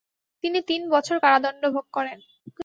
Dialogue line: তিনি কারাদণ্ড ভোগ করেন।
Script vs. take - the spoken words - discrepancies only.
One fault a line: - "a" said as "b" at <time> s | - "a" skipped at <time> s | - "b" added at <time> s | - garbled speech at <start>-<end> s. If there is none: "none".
- "তিন বছর" added at 0.7 s